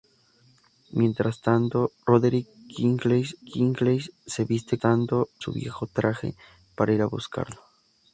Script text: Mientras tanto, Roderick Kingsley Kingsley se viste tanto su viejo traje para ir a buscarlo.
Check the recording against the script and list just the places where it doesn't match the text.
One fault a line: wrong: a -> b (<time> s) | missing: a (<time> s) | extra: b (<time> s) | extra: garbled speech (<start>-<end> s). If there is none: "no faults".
no faults